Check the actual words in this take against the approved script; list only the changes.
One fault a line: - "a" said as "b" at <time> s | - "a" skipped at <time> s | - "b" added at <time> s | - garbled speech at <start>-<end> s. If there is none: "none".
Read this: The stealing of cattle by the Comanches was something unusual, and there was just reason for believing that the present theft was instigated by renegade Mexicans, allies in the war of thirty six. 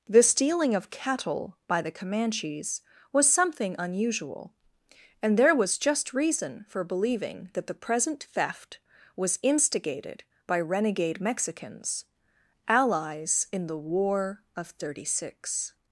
none